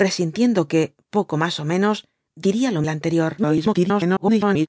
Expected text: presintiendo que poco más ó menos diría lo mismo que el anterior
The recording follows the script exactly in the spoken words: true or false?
false